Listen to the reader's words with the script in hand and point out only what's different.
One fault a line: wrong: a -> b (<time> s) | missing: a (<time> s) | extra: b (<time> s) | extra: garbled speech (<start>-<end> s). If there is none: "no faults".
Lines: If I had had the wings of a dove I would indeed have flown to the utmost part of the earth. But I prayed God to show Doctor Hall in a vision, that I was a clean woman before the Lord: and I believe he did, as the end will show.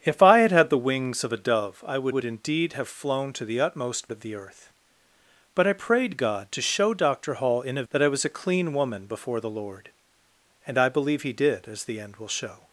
extra: would (2.1 s)
missing: part (4.1 s)
missing: vision (7.8 s)